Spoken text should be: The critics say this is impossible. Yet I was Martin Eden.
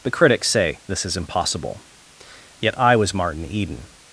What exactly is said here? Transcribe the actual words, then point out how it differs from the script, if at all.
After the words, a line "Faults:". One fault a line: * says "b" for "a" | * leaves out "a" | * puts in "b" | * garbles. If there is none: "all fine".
The critics say this is impossible. Yet I was Martin Eden.
Faults:
all fine